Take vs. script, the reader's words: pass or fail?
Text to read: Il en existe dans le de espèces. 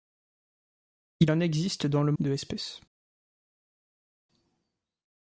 pass